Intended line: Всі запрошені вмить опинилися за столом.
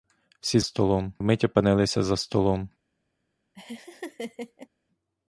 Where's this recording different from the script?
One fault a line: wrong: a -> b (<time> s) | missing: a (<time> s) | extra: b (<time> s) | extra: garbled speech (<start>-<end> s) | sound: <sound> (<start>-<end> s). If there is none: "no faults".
wrong: запрошені -> столом (0.6 s)
sound: laugh (3.5-4.7 s)